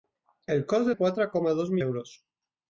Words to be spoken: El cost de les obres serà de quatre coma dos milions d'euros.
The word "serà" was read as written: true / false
false